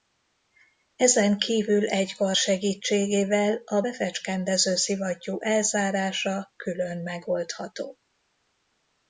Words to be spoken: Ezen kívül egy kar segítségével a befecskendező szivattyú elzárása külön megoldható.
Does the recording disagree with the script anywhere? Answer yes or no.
no